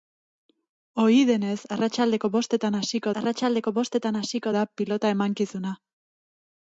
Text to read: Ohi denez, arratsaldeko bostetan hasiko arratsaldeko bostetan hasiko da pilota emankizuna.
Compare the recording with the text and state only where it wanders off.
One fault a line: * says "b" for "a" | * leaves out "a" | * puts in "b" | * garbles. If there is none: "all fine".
all fine